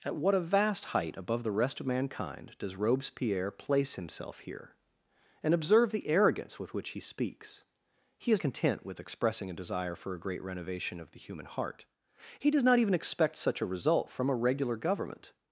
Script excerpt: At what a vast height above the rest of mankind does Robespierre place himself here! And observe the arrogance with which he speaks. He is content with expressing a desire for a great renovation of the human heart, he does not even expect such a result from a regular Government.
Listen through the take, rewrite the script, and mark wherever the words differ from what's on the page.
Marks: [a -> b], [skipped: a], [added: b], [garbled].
At what a vast height above the rest of mankind does Robespierre place himself here! And observe the arrogance with which he speaks. He is content with expressing a desire for a great renovation of the human heart, he does not even expect such a result from a regular Government.